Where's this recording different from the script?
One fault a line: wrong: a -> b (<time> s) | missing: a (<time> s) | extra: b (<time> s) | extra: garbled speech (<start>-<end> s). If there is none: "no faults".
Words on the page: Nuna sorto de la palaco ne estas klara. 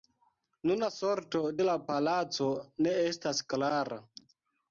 no faults